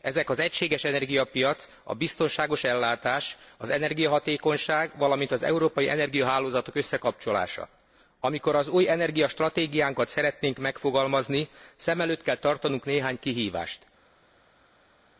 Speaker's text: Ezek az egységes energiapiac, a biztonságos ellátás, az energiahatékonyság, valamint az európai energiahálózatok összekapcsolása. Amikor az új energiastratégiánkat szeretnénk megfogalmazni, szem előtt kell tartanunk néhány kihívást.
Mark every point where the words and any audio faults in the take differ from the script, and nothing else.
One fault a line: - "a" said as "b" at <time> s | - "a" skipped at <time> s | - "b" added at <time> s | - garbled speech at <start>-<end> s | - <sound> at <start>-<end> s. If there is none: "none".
none